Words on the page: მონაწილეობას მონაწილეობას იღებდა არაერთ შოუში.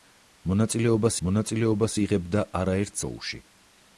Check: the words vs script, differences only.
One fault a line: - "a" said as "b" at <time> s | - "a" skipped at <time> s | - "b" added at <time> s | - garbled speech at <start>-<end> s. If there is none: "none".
none